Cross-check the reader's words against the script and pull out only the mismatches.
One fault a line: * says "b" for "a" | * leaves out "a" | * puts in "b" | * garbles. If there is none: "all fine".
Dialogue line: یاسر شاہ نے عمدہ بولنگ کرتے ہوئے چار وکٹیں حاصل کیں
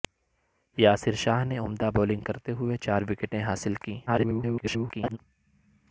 * garbles